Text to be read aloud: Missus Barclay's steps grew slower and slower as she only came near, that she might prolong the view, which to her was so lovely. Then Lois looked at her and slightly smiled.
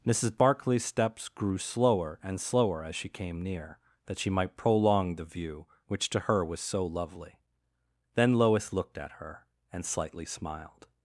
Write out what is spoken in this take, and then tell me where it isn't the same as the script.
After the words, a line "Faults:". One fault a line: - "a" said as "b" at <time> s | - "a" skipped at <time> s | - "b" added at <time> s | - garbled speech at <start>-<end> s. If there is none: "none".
Missus Barclay's steps grew slower and slower as she came near, that she might prolong the view, which to her was so lovely. Then Lois looked at her and slightly smiled.
Faults:
- "only" skipped at 3.1 s